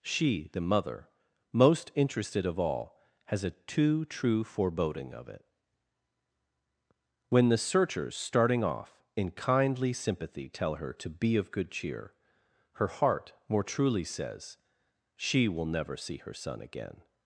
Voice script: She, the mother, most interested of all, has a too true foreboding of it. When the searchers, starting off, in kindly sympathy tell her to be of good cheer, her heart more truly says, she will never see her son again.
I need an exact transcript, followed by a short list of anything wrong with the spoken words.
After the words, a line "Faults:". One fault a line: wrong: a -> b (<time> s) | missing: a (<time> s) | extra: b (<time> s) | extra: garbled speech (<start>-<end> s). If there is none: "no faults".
She, the mother, most interested of all, has a too true foreboding of it. When the searchers, starting off, in kindly sympathy tell her to be of good cheer, her heart more truly says, she will never see her son again.
Faults:
no faults